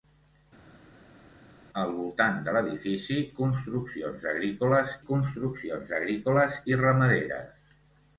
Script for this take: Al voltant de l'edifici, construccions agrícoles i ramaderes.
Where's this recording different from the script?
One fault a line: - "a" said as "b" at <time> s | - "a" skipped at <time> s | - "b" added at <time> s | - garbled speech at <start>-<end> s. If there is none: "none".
- "construccions agrícoles" added at 5.1 s